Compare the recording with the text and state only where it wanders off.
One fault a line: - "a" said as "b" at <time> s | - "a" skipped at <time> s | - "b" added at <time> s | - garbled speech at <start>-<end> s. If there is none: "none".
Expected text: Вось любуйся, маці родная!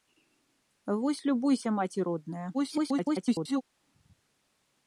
- garbled speech at 2.5-3.6 s